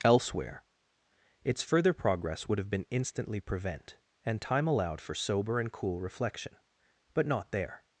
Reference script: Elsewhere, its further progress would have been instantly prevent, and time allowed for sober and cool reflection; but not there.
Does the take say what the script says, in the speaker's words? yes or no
yes